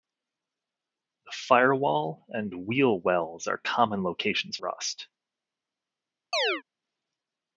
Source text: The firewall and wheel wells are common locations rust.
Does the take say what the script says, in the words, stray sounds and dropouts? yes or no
no